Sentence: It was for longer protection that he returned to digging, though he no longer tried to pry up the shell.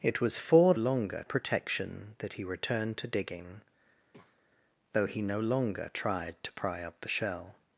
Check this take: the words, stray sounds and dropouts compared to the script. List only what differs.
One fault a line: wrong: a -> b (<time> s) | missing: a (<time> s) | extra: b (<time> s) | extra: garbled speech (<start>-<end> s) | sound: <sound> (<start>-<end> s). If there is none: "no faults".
sound: breath (4.1-4.5 s)